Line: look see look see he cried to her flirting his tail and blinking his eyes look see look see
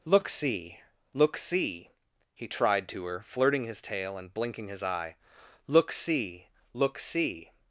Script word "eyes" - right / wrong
wrong